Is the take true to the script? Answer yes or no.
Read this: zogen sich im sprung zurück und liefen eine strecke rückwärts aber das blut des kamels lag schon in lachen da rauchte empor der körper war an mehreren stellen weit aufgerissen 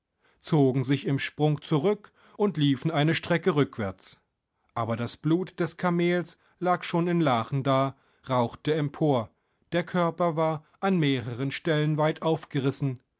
yes